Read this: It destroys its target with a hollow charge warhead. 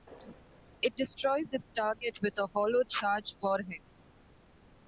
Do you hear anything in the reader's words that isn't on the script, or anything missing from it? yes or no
no